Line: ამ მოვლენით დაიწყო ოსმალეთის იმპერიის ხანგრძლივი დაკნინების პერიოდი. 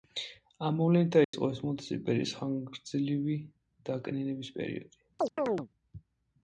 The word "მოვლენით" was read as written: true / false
true